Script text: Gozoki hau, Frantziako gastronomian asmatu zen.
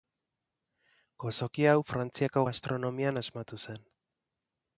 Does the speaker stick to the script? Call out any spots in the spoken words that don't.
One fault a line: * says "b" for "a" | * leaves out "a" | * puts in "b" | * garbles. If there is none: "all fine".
all fine